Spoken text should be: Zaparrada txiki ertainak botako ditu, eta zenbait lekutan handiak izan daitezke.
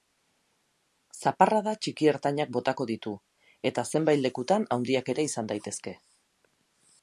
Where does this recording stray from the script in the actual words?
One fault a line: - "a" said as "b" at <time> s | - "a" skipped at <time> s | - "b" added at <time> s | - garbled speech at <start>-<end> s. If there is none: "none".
- "ere" added at 5.2 s